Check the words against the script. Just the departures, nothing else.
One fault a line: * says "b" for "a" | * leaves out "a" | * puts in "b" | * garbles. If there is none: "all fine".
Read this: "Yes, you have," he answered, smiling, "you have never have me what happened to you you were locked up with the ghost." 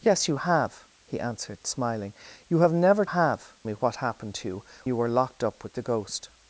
all fine